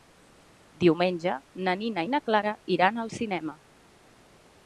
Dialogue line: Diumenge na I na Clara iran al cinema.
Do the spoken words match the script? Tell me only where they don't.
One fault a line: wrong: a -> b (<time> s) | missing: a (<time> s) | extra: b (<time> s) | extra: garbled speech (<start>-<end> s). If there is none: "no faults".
extra: Nina (1.8 s)